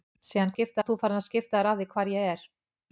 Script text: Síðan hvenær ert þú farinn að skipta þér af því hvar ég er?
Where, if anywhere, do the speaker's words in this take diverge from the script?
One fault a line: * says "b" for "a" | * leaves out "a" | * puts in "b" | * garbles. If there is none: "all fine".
* says "skipta" for "hvenær"